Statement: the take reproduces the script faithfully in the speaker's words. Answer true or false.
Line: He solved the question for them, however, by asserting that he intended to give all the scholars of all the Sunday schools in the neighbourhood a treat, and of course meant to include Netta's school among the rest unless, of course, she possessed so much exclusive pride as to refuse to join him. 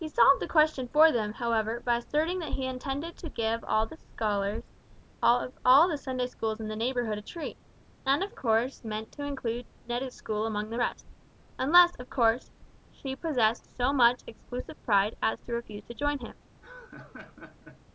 true